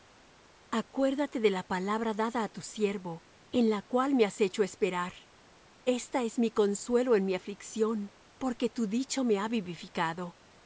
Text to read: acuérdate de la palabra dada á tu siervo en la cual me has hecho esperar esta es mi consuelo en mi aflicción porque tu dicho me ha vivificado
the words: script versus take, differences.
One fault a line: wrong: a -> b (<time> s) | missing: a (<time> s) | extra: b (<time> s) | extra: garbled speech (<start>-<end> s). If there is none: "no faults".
no faults